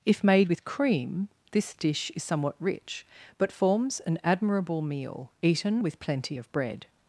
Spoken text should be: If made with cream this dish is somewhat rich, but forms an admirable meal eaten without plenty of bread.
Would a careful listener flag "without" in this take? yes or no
yes